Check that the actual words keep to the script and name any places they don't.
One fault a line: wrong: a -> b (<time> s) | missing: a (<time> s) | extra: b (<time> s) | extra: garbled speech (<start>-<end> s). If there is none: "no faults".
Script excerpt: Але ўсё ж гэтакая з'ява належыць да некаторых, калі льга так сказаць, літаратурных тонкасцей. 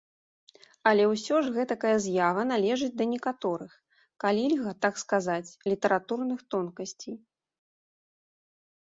no faults